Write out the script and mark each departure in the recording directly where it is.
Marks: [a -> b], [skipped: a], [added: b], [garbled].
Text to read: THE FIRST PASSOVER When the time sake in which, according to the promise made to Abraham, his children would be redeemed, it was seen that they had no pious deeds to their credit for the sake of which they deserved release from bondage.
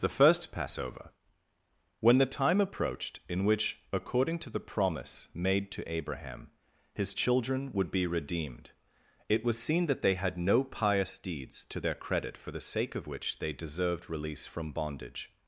THE FIRST PASSOVER When the time [sake -> approached] in which, according to the promise made to Abraham, his children would be redeemed, it was seen that they had no pious deeds to their credit for the sake of which they deserved release from bondage.